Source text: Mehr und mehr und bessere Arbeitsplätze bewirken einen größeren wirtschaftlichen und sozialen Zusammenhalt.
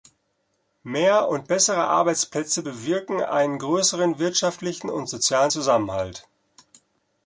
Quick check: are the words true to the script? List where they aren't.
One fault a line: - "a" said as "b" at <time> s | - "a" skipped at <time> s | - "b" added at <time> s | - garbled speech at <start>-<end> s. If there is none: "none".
- "mehr und" skipped at 1.5 s